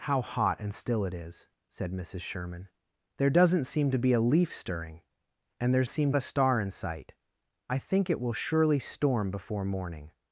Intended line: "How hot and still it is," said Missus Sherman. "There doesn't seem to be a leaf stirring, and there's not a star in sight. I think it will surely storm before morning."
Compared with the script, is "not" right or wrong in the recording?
wrong